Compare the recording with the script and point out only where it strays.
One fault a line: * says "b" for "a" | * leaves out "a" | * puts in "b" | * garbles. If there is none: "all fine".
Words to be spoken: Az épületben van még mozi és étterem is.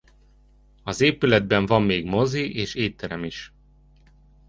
all fine